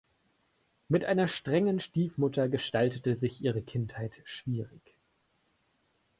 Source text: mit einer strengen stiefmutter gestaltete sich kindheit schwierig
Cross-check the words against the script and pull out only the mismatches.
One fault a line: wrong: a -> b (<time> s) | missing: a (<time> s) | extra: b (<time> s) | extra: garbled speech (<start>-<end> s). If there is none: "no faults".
extra: ihre (3.4 s)